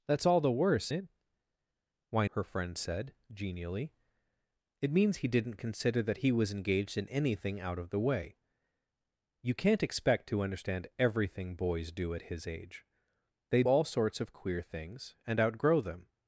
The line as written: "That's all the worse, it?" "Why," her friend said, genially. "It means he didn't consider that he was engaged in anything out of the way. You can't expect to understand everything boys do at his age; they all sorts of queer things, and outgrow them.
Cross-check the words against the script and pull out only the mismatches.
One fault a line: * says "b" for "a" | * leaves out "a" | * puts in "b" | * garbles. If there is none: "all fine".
all fine